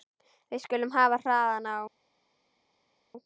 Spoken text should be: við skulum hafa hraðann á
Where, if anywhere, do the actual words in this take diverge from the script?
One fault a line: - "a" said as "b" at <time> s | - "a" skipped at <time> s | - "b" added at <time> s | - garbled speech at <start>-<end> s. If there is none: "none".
none